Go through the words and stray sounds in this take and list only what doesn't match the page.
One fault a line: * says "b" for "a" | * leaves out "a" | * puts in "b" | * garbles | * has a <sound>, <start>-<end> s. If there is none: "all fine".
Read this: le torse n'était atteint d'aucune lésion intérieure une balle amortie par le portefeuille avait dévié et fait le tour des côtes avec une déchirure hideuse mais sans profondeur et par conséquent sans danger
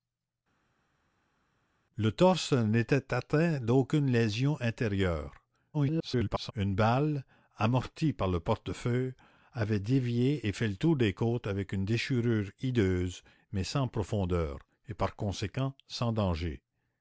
* garbles